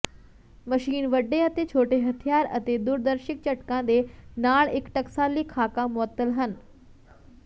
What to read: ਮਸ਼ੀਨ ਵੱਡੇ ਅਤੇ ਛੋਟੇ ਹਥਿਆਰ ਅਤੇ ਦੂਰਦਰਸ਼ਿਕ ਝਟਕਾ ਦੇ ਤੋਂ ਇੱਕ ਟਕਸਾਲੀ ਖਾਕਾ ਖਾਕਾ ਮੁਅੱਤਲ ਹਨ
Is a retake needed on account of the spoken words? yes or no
yes